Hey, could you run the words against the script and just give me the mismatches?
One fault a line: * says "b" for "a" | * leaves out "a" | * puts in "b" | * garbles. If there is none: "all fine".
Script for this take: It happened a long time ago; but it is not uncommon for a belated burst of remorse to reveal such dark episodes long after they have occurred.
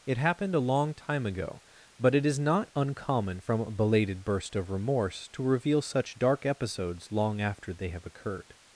* says "from" for "for"